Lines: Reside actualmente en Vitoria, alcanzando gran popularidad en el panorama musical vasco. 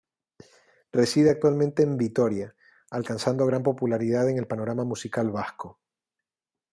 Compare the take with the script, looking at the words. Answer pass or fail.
pass